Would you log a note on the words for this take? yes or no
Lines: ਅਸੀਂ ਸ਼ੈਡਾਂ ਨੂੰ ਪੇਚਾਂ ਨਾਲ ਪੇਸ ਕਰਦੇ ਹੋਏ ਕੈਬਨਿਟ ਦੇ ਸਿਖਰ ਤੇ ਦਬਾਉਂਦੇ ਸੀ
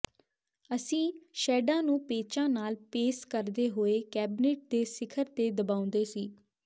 no